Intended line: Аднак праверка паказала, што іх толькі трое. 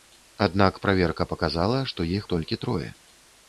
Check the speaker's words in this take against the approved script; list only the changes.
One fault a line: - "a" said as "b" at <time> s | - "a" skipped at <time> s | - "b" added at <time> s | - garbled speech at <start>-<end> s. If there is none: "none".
none